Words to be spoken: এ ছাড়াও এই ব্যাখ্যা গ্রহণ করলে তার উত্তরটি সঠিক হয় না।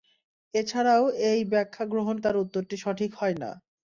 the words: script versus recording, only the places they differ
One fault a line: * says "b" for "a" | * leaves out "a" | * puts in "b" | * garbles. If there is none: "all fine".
* leaves out "করলে"